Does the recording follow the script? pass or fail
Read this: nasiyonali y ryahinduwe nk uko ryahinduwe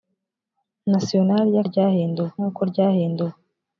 pass